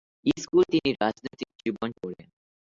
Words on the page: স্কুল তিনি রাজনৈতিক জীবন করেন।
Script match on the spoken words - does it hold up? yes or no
yes